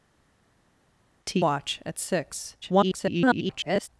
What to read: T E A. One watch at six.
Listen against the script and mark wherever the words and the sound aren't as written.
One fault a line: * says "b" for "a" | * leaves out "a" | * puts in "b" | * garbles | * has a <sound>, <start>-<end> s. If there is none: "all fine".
* leaves out "E A One"
* garbles